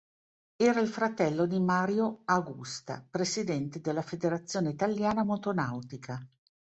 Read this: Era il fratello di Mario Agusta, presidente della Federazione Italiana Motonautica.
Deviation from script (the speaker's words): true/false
false